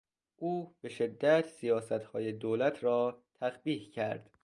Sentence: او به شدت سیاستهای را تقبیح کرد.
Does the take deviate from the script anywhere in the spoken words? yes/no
yes